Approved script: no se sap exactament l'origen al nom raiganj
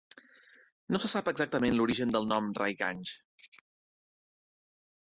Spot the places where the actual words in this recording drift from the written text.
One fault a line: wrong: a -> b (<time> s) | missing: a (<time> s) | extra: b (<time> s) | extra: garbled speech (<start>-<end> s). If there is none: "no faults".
wrong: al -> del (2.2 s)